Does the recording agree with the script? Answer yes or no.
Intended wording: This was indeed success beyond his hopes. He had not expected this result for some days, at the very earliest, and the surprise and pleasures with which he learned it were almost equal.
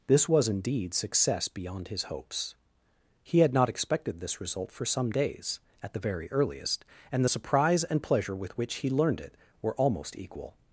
no